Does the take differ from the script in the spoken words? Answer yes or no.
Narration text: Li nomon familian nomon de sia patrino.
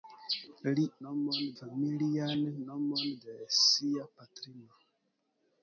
no